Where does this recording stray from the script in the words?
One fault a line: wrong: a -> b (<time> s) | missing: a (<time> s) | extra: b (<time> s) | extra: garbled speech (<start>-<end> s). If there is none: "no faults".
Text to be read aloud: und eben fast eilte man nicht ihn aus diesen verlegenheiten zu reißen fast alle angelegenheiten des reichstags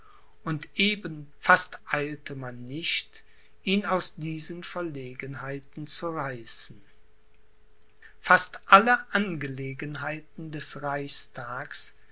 no faults